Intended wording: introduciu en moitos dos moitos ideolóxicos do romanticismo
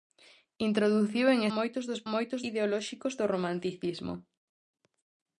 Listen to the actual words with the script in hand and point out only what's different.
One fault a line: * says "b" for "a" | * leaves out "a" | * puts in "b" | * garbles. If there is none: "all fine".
all fine